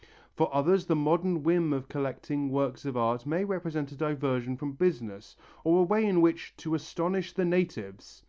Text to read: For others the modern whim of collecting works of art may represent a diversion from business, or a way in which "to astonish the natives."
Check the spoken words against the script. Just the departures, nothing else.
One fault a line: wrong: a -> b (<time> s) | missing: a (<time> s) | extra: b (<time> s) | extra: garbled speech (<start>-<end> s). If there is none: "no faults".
no faults